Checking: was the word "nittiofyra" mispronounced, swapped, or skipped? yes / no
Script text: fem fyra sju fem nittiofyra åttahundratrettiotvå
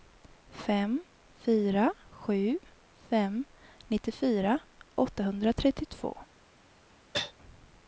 no